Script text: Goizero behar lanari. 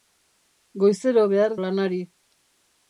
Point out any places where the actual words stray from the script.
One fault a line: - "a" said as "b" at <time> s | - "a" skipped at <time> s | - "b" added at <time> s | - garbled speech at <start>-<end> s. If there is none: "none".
none